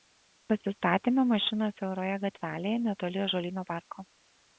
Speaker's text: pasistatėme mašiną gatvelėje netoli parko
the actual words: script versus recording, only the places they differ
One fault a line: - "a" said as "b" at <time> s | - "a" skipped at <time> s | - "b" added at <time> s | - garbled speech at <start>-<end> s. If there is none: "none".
- "siauroje" added at 1.8 s
- "ąžuolyno" added at 3.3 s